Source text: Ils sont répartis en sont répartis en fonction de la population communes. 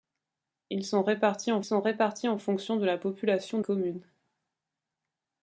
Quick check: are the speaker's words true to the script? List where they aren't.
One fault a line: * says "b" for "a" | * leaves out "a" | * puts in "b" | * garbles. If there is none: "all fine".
all fine